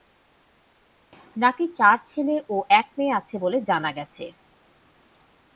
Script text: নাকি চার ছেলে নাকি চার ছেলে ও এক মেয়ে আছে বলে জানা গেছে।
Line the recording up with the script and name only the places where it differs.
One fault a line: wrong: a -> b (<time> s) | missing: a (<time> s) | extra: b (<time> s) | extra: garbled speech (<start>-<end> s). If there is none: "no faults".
missing: নাকি চার ছেলে (2.4 s)